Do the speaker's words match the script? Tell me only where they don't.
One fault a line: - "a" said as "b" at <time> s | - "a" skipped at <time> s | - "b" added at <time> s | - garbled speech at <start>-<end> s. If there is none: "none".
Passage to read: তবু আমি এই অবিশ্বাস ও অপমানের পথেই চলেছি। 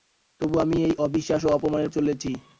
- "পথেই" skipped at 1.9 s